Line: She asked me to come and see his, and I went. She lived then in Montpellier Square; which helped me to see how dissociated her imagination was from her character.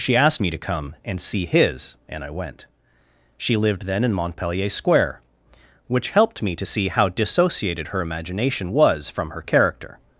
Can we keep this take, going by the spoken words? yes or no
yes